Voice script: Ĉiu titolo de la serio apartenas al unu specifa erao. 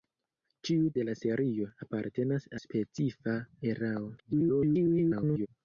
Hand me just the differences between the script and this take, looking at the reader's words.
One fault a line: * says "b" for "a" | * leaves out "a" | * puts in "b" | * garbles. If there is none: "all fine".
* leaves out "titolo"
* leaves out "al unu"
* garbles